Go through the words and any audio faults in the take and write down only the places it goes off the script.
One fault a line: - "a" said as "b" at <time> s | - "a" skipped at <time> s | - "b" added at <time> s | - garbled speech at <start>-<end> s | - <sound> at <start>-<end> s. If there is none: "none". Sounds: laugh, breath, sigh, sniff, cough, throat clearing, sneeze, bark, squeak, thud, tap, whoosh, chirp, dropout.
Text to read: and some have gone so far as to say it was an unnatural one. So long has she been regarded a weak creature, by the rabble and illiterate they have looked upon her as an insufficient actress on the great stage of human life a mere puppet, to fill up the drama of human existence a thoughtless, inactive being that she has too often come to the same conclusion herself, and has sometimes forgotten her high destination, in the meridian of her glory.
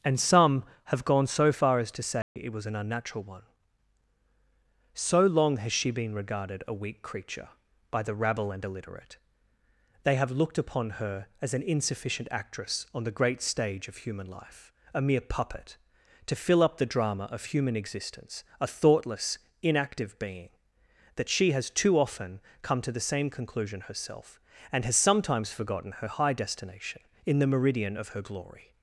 - dropout at 2.2-2.4 s